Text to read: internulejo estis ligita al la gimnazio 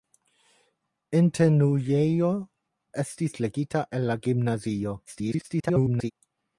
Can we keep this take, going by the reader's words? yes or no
no